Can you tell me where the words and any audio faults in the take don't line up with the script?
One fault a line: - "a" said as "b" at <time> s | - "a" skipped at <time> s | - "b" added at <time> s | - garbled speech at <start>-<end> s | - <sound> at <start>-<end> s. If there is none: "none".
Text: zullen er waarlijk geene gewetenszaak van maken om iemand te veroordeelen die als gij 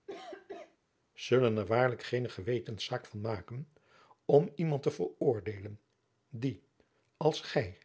- cough at 0.1-0.8 s